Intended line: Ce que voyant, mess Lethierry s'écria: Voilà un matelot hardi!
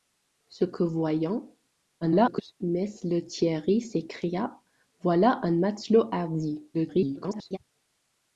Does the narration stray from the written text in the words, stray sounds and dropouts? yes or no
yes